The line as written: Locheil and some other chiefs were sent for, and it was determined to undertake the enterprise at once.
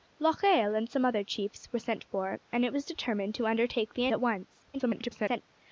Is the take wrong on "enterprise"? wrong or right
wrong